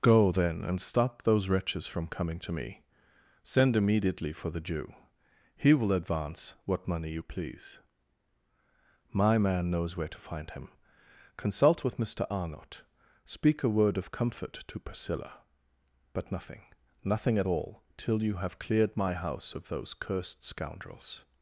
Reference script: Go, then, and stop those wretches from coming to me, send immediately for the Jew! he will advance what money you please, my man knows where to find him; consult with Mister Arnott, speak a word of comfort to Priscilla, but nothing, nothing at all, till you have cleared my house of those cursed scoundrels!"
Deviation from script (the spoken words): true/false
false